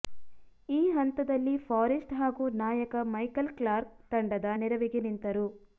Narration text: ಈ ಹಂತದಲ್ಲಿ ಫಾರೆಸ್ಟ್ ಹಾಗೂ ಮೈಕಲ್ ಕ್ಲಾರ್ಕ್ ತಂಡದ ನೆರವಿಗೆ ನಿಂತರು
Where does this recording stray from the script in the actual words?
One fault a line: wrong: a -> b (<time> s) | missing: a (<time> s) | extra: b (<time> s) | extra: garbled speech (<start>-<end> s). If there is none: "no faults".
extra: ನಾಯಕ (2.6 s)